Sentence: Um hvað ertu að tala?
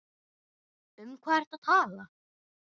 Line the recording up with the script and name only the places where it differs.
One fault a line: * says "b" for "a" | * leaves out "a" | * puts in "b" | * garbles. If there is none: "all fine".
all fine